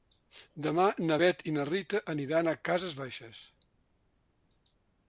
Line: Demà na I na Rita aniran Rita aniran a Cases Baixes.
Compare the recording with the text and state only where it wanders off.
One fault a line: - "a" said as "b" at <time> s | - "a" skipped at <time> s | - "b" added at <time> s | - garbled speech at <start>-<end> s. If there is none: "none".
- "Bet" added at 1.2 s
- "Rita aniran" skipped at 2.5 s